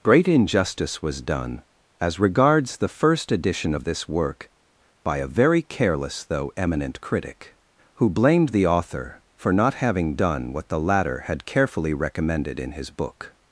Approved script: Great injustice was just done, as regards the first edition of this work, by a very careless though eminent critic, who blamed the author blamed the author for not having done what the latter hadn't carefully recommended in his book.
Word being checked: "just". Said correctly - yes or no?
no